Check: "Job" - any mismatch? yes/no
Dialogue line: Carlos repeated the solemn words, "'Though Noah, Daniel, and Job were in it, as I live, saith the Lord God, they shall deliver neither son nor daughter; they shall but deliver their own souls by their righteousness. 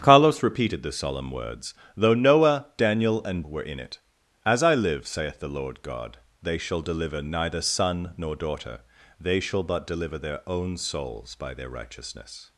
yes